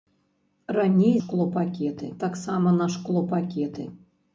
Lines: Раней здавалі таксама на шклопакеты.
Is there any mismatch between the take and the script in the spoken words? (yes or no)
yes